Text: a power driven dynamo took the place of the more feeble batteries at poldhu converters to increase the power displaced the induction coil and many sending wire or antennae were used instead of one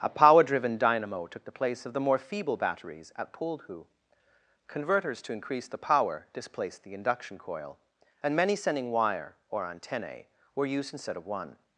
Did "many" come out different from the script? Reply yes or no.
no